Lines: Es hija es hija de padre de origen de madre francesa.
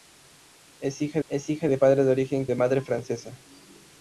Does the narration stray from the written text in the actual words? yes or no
no